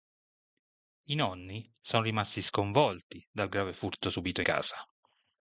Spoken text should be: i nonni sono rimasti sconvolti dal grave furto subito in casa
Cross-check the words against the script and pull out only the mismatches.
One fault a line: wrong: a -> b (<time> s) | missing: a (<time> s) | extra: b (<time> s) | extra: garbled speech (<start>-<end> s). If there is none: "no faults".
missing: in (4.4 s)